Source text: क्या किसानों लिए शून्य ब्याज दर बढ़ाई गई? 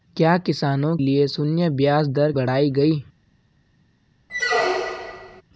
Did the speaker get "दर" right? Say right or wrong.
right